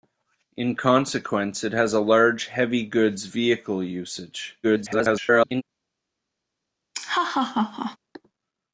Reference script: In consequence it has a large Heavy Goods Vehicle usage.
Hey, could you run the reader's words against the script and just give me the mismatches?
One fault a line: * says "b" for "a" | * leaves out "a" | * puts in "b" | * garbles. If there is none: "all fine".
* garbles